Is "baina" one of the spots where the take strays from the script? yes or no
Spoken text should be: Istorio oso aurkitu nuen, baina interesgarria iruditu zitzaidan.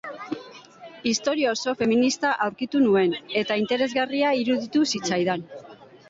yes